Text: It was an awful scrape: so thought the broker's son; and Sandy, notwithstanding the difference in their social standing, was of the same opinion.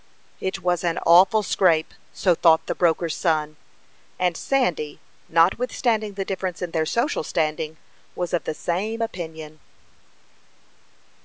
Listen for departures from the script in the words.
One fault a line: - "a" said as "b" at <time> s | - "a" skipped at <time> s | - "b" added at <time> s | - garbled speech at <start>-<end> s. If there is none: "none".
none